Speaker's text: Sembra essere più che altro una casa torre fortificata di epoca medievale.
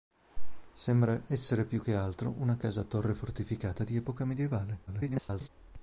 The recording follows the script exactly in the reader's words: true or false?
false